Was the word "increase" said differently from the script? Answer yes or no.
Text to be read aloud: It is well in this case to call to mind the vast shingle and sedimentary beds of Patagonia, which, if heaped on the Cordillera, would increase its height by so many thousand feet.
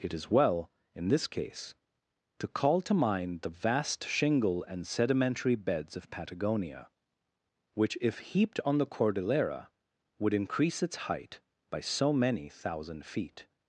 no